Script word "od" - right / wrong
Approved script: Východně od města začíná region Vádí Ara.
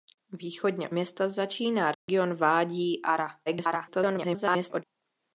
wrong